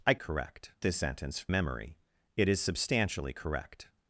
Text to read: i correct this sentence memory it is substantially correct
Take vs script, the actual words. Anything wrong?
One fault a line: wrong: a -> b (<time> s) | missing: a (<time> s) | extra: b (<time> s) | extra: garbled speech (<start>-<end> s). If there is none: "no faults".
no faults